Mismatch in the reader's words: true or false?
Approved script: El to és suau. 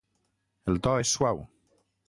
false